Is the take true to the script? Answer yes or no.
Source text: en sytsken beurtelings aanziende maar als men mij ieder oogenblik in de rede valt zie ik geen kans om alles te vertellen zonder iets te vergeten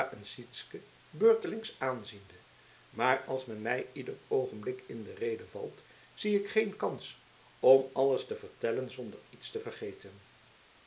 yes